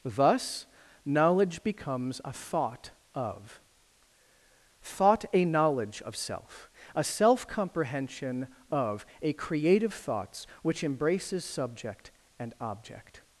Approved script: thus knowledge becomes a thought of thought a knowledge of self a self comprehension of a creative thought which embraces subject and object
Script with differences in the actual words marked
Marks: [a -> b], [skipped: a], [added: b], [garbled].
thus knowledge becomes a thought of thought a knowledge of self a self comprehension of a creative [thought -> thoughts] which embraces subject and object